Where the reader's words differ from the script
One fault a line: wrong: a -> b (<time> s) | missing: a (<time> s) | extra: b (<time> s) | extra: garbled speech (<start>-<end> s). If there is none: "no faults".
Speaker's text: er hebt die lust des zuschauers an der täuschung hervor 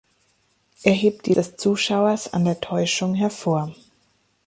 missing: lust (1.3 s)